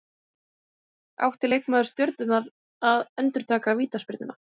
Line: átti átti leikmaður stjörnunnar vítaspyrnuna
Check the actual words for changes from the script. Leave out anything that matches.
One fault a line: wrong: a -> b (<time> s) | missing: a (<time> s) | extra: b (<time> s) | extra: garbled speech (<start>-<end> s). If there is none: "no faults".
missing: átti (1.5 s)
extra: að endurtaka (2.9 s)